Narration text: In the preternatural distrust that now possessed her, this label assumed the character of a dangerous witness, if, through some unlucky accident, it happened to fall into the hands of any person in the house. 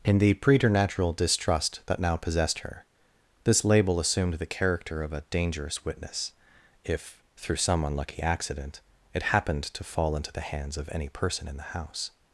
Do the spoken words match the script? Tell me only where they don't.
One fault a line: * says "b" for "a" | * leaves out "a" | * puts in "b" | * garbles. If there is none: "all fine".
all fine